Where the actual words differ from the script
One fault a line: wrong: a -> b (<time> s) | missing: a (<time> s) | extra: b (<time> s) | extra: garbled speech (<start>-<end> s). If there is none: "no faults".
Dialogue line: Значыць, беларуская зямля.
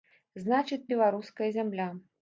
no faults